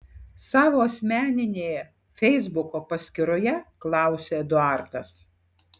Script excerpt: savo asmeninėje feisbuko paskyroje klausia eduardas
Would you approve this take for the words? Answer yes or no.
yes